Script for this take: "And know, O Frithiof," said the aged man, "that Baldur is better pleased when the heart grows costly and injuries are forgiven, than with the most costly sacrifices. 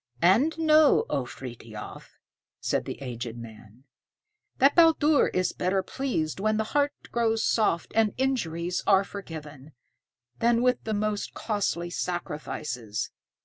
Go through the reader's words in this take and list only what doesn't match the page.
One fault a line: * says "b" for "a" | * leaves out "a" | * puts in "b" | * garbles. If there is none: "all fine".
* says "soft" for "costly"